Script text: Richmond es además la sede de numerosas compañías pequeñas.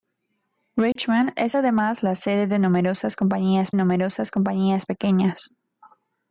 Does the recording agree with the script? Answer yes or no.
no